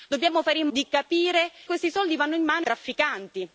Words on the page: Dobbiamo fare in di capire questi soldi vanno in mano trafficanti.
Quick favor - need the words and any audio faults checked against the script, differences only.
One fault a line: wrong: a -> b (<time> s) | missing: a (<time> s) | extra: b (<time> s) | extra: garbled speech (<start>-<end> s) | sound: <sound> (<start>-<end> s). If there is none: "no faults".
no faults